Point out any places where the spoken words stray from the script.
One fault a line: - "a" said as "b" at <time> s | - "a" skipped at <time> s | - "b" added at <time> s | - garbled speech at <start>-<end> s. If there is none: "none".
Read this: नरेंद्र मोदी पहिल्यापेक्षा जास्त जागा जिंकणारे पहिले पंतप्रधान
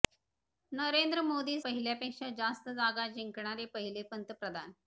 none